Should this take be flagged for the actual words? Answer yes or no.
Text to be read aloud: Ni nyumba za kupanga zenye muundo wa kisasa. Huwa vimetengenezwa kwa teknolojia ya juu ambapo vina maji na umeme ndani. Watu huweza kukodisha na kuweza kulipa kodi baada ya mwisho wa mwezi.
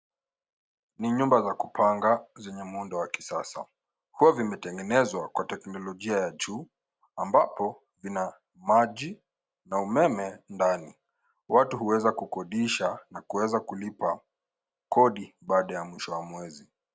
no